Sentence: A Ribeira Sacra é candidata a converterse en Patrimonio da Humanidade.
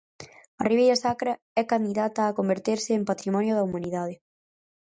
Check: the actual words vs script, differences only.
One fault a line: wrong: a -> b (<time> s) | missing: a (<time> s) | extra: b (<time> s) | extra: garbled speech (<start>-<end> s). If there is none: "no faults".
no faults